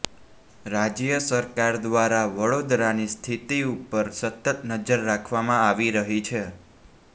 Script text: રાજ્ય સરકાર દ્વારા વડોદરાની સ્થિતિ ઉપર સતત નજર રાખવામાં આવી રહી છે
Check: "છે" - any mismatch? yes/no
no